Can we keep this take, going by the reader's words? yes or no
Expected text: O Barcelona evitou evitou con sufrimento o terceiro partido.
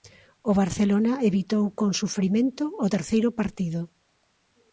no